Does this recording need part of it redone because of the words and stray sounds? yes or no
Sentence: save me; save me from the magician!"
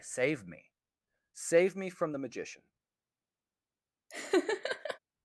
yes